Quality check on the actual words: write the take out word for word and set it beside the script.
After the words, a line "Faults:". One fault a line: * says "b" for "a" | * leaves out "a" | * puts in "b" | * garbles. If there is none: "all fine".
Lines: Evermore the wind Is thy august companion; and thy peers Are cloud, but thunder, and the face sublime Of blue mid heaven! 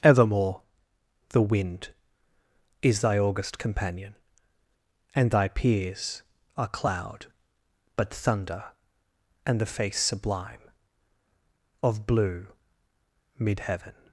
Evermore the wind Is thy august companion; and thy peers Are cloud, but thunder, and the face sublime Of blue mid heaven!
Faults:
all fine